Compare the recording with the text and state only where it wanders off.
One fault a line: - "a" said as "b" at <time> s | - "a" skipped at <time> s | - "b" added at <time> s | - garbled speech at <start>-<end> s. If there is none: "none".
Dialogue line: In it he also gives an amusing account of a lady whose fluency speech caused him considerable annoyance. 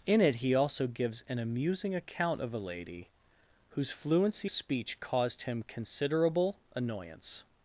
none